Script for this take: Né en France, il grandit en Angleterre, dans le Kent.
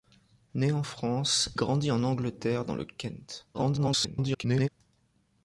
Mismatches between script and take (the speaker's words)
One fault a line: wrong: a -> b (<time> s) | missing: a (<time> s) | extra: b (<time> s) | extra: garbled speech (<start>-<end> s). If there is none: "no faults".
missing: il (1.6 s)
extra: garbled speech (3.5-4.7 s)